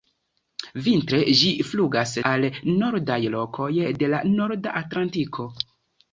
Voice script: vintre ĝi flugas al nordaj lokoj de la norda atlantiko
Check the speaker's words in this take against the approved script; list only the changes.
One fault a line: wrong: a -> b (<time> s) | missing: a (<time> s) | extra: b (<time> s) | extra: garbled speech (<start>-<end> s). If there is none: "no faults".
no faults